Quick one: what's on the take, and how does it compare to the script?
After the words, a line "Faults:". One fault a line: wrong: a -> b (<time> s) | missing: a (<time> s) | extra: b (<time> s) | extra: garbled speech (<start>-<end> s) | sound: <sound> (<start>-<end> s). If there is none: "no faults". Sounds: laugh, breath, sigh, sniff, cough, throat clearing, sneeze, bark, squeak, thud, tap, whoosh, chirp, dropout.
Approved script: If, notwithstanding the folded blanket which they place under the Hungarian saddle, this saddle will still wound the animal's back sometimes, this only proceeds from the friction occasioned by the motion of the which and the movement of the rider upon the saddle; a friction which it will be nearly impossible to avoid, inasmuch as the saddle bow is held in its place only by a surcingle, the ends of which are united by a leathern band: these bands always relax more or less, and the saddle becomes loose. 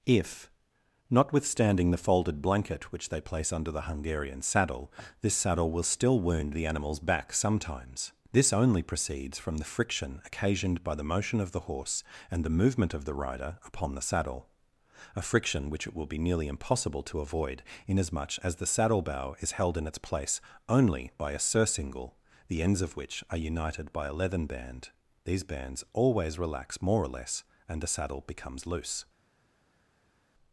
If, notwithstanding the folded blanket which they place under the Hungarian saddle, this saddle will still wound the animal's back sometimes, this only proceeds from the friction occasioned by the motion of the horse and the movement of the rider upon the saddle; a friction which it will be nearly impossible to avoid, inasmuch as the saddle bow is held in its place only by a surcingle, the ends of which are united by a leathern band: these bands always relax more or less, and the saddle becomes loose.
Faults:
wrong: which -> horse (11.6 s)